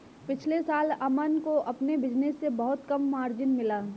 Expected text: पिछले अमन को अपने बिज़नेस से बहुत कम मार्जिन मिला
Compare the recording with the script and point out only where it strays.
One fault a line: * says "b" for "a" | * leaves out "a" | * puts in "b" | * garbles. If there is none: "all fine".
* puts in "साल"